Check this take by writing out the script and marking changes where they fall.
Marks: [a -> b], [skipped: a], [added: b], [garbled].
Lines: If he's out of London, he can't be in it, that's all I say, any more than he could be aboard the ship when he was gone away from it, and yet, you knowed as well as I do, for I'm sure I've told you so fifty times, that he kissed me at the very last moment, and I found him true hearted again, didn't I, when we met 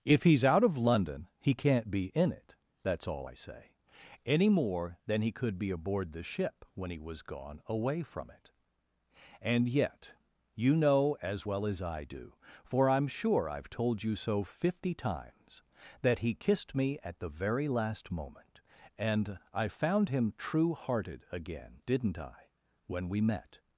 If he's out of London, he can't be in it, that's all I say, any more than he could be aboard the ship when he was gone away from it, and yet, you [knowed -> know] as well as I do, for I'm sure I've told you so fifty times, that he kissed me at the very last moment, and I found him true hearted again, didn't I, when we met